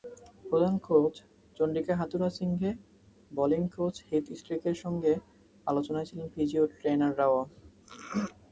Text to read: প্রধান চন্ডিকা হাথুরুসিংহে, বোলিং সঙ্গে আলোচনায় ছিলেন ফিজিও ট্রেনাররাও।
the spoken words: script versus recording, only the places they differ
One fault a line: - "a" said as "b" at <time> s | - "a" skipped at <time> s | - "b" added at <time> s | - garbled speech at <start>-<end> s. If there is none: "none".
- "কোচ" added at 0.9 s
- "কোচ হিথ স্ট্রিকের" added at 3.8 s